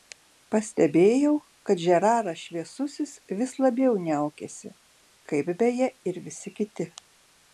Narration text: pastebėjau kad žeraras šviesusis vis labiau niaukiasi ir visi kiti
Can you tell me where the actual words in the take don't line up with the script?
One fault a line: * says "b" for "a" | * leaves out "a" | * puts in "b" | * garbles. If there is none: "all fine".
* puts in "kaip beje"